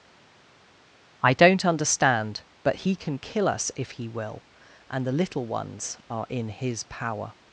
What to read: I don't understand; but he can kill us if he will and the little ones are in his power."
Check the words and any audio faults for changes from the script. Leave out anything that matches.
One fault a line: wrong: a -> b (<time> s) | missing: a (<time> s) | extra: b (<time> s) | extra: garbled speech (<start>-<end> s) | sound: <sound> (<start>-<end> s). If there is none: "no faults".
no faults